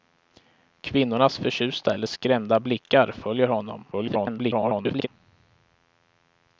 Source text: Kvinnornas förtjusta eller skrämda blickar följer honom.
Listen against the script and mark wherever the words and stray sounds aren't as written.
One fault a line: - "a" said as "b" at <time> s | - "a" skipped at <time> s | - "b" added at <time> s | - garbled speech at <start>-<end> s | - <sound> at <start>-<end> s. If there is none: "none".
- garbled speech at 3.9-5.1 s